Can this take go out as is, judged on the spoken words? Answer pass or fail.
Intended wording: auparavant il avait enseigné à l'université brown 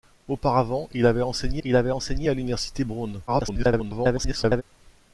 fail